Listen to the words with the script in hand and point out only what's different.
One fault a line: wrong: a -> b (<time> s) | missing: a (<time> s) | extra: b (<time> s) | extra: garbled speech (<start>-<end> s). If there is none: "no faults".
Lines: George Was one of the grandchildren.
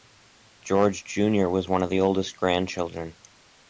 extra: Junior (1.0 s)
extra: oldest (2.0 s)